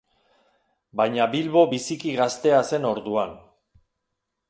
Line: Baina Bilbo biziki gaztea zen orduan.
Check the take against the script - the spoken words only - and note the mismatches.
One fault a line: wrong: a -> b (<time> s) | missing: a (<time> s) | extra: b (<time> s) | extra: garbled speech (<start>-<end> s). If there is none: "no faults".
no faults